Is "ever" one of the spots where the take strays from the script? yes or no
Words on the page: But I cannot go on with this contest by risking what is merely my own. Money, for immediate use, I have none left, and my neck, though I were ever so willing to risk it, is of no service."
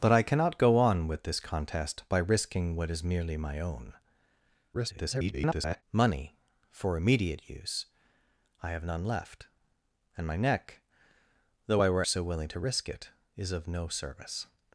yes